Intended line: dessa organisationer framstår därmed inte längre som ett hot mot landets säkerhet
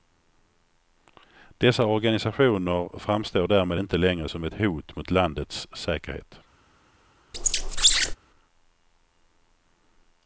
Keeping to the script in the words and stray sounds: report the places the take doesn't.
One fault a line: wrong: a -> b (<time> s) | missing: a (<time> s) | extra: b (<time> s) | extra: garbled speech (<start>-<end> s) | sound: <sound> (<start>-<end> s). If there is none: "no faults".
sound: squeak (7.3-8.2 s)